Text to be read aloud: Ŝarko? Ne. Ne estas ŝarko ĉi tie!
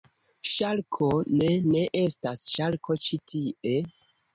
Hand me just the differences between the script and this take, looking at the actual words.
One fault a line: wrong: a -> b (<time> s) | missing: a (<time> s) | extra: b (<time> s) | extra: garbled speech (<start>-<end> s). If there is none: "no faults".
no faults